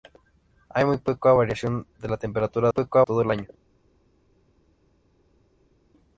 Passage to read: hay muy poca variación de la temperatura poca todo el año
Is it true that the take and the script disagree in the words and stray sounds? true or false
false